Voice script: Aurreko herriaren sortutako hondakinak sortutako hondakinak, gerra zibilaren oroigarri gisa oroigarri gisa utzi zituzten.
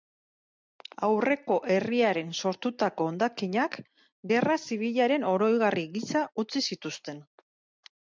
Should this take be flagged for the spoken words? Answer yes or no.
yes